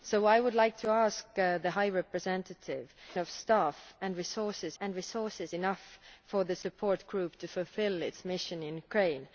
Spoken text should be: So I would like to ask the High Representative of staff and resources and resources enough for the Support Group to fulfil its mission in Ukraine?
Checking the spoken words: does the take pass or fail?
pass